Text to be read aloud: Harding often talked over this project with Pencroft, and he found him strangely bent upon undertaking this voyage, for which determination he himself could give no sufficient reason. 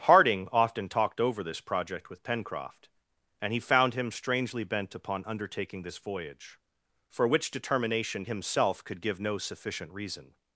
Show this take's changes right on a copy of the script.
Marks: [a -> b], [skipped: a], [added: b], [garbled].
Harding often talked over this project with Pencroft, and he found him strangely bent upon undertaking this voyage, for which determination [skipped: he] himself could give no sufficient reason.